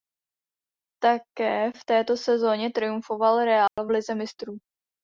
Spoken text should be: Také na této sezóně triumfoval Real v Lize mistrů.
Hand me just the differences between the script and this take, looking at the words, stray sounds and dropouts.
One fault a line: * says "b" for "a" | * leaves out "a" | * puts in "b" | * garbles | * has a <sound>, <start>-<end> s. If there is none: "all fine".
* says "v" for "na"
* has a dropout, 3.7-3.8 s